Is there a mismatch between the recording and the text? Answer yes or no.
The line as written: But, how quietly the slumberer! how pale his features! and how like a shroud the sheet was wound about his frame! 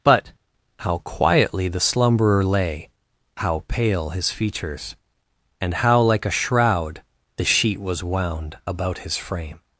yes